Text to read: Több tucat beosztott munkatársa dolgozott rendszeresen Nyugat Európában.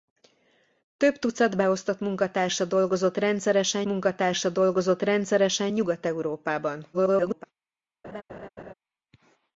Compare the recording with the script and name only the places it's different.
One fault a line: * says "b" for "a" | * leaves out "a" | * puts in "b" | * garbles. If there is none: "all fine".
* puts in "munkatársa dolgozott rendszeresen"
* garbles